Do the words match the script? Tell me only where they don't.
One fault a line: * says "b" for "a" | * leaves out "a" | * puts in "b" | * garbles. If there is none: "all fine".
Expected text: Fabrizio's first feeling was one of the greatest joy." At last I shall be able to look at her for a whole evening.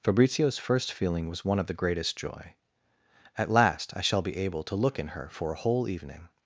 * says "in" for "at"